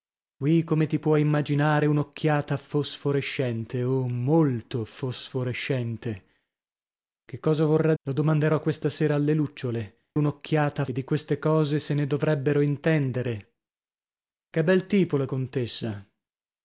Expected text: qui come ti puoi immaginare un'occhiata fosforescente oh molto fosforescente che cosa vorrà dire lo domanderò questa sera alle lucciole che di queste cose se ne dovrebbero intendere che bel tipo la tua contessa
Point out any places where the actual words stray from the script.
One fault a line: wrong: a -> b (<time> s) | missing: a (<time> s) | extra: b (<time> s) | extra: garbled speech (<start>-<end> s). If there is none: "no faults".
missing: dire (7.9 s)
wrong: che -> un'occhiata (10.1 s)
missing: tua (15.3 s)